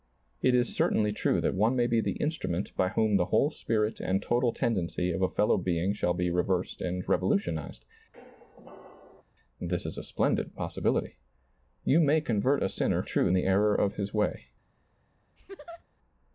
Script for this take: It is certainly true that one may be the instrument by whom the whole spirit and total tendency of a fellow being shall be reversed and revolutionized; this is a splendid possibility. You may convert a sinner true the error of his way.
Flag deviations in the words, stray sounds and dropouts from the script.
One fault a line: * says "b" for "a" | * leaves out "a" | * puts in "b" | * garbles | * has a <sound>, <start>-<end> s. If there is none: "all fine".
* has a squeak, 8.1-9.2 s
* has a laugh, 15.4-15.8 s